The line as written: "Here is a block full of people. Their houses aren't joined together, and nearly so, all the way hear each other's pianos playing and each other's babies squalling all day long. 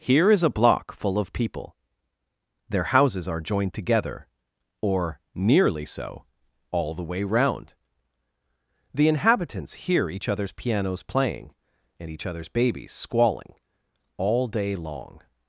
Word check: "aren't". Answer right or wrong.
wrong